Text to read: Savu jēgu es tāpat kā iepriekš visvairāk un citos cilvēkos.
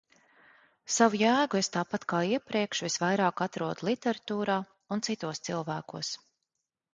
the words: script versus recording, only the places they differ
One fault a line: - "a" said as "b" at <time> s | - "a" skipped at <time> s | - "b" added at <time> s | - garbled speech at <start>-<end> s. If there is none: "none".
- "atrodu literatūrā" added at 3.5 s